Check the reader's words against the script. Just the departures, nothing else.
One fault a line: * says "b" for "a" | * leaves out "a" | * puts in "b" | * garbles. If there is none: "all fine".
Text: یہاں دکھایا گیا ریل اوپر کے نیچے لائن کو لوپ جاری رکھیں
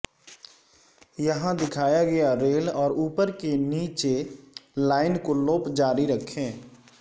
* puts in "اور"